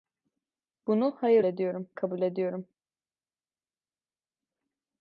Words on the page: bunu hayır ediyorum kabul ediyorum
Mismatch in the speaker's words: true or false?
false